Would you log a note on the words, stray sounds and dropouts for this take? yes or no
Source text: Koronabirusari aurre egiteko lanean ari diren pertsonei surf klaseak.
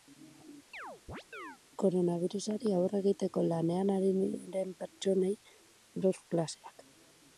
yes